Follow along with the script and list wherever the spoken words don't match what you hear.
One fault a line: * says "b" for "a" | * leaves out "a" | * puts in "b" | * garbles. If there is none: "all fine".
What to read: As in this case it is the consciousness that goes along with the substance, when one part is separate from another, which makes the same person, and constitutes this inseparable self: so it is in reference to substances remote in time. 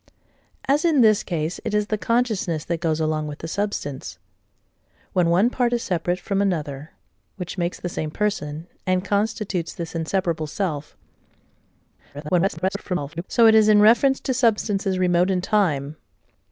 * garbles